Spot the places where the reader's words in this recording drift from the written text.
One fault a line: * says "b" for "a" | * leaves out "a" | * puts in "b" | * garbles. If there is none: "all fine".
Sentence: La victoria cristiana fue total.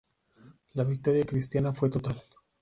all fine